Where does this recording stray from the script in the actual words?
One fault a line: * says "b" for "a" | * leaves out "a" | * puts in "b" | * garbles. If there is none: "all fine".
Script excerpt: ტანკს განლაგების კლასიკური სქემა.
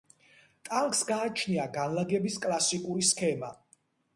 * puts in "გააჩნია"